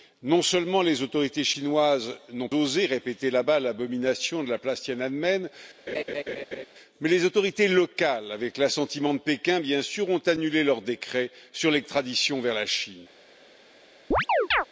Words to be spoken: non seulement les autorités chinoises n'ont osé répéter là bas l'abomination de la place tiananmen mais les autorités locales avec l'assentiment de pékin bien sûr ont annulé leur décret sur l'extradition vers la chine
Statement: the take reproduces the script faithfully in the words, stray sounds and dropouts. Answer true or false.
false